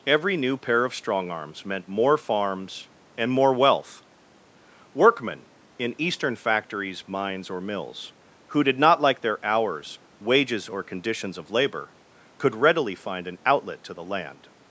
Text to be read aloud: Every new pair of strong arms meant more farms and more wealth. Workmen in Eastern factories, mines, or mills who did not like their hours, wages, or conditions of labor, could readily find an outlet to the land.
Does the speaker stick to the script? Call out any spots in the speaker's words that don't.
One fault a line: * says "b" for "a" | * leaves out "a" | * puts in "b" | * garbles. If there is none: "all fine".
all fine